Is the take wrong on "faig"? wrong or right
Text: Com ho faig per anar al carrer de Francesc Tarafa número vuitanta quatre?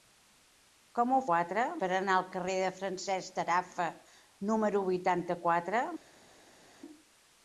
wrong